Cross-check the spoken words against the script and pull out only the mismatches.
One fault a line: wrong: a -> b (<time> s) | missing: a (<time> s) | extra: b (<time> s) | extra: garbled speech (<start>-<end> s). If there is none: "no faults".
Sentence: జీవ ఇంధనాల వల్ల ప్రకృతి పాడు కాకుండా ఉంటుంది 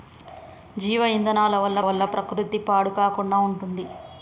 extra: వల్ల (1.8 s)